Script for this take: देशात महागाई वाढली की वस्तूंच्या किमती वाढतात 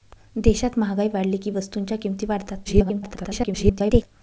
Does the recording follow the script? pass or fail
fail